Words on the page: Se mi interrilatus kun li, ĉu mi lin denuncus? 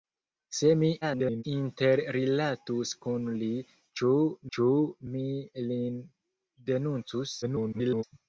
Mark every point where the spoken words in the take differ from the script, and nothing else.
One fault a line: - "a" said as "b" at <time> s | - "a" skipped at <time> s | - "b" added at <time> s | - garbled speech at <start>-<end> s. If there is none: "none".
- garbled speech at 1.0-1.4 s
- "ĉu" added at 4.6 s
- garbled speech at 7.4-8.0 s